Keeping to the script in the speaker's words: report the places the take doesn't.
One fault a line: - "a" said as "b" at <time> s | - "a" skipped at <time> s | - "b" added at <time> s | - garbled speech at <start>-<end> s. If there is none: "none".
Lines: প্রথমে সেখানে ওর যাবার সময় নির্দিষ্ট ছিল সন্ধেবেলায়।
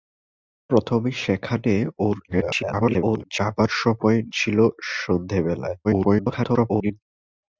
- garbled speech at 2.3-3.2 s
- "নির্দিষ্ট" skipped at 4.2 s
- garbled speech at 5.8-7.0 s